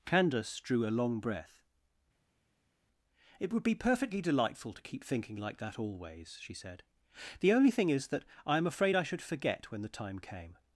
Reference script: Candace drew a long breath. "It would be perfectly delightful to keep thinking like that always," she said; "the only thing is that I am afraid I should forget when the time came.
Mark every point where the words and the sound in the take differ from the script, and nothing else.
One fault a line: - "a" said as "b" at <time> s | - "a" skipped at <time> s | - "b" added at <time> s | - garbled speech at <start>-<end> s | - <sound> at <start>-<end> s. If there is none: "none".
none